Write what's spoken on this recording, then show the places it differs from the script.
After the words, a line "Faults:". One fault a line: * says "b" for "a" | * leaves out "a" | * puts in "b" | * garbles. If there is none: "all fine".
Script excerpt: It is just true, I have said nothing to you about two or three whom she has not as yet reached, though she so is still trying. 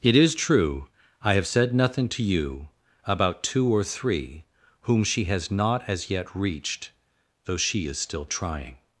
It is true, I have said nothing to you about two or three whom she has not as yet reached, though she is still trying.
Faults:
* leaves out "just"
* leaves out "so"